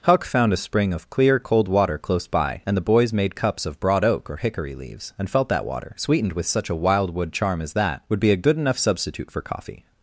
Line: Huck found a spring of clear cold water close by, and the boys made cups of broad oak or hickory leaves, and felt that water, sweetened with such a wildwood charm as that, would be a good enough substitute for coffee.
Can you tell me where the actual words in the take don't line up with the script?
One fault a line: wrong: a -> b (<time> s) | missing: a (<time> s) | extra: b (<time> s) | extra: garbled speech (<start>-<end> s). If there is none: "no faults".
no faults